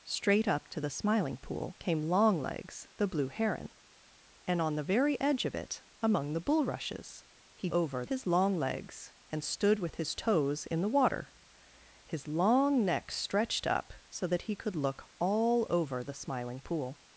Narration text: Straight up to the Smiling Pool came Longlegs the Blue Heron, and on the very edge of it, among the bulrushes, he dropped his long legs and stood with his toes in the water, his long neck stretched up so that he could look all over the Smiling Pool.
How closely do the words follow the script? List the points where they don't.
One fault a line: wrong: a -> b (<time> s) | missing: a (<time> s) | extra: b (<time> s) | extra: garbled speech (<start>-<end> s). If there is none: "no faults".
wrong: dropped -> over (7.7 s)